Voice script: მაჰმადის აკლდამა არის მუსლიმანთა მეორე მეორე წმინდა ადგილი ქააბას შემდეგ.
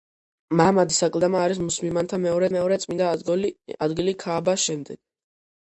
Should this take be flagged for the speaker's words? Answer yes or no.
no